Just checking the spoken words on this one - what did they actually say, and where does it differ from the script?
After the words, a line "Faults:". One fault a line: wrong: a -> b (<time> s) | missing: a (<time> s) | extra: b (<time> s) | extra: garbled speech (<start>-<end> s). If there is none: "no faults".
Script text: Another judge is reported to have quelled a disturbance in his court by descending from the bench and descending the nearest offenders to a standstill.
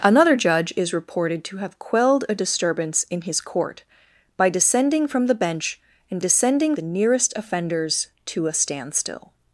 Another judge is reported to have quelled a disturbance in his court by descending from the bench and descending the nearest offenders to a standstill.
Faults:
no faults